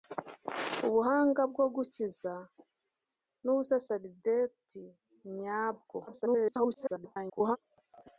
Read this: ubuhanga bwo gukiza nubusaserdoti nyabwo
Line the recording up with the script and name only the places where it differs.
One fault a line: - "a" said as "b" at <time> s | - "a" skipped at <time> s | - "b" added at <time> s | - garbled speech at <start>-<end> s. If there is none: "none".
- garbled speech at 6.1-7.6 s